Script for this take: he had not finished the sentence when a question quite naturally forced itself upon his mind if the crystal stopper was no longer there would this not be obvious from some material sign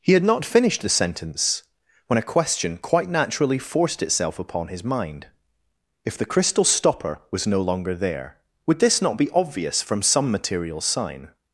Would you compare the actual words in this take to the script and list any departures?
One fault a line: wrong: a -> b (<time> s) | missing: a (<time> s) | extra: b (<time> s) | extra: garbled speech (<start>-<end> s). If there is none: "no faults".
no faults